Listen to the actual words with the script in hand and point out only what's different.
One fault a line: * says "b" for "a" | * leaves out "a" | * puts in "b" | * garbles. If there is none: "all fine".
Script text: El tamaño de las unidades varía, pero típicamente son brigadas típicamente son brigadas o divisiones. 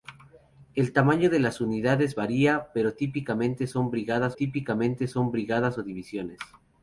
all fine